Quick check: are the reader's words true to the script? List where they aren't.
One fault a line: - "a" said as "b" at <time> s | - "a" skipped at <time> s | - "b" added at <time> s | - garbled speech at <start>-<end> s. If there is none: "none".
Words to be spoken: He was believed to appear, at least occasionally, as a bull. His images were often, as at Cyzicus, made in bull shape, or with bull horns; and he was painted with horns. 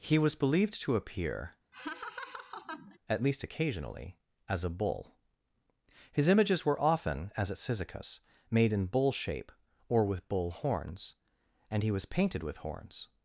none